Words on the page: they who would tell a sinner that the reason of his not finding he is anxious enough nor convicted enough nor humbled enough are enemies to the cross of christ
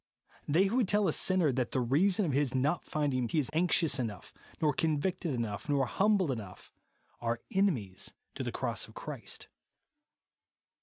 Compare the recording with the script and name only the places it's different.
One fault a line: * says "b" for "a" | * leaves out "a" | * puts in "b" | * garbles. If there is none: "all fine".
all fine